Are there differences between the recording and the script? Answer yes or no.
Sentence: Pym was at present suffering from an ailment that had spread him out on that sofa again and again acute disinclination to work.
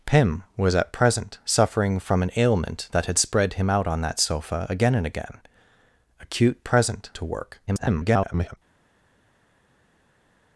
yes